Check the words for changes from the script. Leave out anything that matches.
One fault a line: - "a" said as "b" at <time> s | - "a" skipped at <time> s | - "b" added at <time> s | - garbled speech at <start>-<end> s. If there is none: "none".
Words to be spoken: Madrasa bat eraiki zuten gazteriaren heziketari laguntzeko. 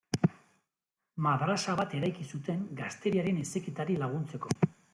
none